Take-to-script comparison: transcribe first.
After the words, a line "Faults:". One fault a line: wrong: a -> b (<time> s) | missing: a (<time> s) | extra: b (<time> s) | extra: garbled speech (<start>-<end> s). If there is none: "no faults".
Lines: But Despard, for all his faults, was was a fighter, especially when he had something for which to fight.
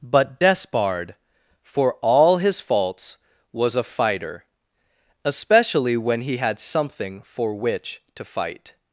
But Despard, for all his faults, was a fighter, especially when he had something for which to fight.
Faults:
missing: was (3.7 s)